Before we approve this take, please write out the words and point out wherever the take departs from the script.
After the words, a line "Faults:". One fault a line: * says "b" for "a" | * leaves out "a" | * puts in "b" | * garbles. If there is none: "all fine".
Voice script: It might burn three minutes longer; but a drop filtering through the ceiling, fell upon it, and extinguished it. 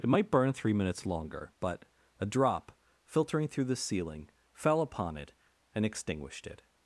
It might burn three minutes longer; but a drop filtering through the ceiling, fell upon it, and extinguished it.
Faults:
all fine